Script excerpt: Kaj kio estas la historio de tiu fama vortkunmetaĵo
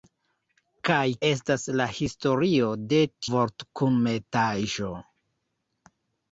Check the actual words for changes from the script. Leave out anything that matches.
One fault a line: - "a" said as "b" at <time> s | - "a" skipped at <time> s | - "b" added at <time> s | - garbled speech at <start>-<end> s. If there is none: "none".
- "kio" skipped at 1.0 s
- "tiu fama" skipped at 3.0 s